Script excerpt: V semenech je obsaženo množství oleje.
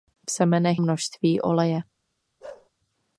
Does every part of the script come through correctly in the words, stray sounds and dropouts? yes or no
no